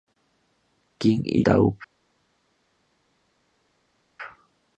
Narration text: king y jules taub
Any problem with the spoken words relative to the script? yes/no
yes